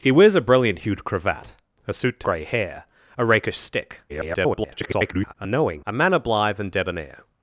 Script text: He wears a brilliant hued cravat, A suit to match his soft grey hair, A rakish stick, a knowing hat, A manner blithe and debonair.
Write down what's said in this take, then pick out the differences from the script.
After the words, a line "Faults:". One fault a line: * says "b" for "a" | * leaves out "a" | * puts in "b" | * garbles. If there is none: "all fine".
He wears a brilliant hued cravat, A suit to grey hair, A rakish stick, [garbled] a knowing A manner blithe and debonair.
Faults:
* leaves out "match his soft"
* garbles
* leaves out "hat"